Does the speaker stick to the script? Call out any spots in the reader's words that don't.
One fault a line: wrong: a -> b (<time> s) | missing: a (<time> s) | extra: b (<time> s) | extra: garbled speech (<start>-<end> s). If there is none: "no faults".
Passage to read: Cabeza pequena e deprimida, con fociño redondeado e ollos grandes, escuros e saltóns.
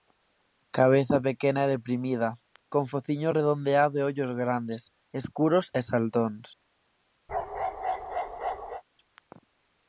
no faults